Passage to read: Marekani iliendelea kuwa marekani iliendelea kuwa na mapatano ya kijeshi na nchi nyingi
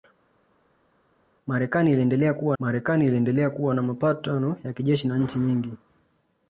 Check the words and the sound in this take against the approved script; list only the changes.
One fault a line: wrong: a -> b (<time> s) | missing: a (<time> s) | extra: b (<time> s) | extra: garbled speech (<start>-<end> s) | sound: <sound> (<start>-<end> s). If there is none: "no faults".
no faults